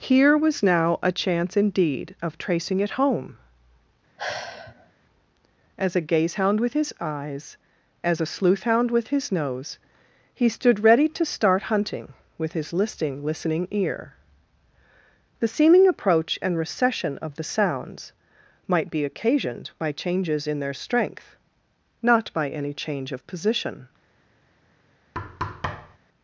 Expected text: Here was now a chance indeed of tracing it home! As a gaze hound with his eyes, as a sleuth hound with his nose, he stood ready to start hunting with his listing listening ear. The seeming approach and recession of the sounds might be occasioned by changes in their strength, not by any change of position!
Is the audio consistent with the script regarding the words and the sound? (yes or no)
no